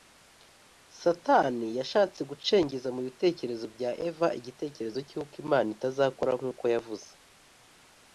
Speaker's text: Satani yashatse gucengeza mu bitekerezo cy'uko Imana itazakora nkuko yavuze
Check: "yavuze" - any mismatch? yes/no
no